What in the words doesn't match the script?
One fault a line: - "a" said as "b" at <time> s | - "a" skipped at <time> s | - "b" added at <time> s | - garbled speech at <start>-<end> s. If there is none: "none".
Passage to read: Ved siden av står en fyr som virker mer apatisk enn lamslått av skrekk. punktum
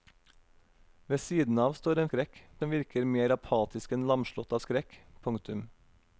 - "fyr" said as "skrekk" at 2.1 s